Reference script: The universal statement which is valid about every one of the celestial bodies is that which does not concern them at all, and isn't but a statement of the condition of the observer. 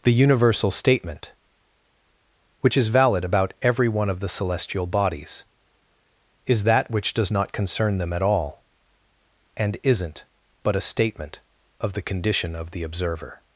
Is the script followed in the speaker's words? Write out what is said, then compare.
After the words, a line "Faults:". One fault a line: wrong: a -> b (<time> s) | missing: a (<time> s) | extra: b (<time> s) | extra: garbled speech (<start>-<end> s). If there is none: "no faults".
The universal statement which is valid about every one of the celestial bodies is that which does not concern them at all, and isn't but a statement of the condition of the observer.
Faults:
no faults